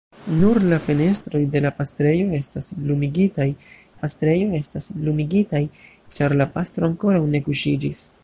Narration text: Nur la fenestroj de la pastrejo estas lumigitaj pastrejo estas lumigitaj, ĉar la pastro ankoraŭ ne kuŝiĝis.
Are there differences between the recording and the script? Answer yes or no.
no